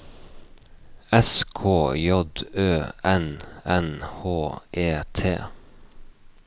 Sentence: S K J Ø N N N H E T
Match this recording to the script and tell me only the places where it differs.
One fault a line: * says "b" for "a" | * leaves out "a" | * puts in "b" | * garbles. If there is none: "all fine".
* leaves out "N"